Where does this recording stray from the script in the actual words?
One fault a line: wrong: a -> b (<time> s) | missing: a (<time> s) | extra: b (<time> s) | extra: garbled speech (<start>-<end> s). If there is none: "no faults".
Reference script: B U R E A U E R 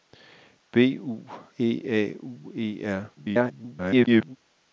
missing: R (1.3 s)
extra: garbled speech (3.2-4.4 s)